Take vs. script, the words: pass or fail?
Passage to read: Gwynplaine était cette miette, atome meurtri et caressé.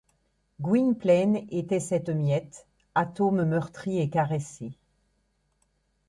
pass